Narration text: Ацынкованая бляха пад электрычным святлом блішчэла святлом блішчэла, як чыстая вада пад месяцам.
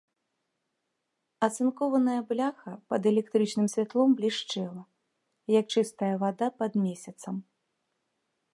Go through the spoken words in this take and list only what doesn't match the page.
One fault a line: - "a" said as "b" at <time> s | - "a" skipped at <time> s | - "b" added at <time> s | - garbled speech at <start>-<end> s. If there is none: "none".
- "святлом блішчэла" skipped at 4.8 s